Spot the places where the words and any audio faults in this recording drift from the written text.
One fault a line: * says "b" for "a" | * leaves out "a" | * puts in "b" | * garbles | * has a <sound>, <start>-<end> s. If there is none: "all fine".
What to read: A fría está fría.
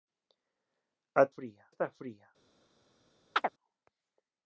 * has a chirp, 3.3-3.5 s